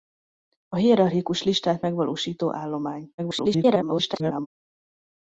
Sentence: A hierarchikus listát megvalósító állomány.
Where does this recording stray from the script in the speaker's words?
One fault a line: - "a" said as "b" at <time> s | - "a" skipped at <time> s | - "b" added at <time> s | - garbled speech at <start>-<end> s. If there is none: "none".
- garbled speech at 3.2-4.5 s